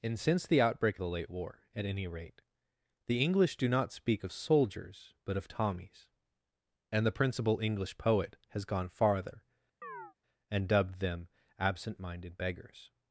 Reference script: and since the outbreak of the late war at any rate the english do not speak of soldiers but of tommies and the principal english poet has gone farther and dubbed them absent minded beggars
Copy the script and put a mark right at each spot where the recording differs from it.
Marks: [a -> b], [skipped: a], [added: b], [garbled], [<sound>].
and since the outbreak [skipped: of] the late war at any rate the english do not speak of soldiers but of tommies and the principal english poet has gone farther [chirp] and dubbed them absent minded beggars